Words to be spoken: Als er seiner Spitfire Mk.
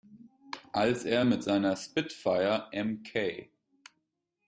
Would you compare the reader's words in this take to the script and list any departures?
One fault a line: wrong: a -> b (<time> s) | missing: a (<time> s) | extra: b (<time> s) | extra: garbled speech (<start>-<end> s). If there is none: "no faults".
extra: mit (1.2 s)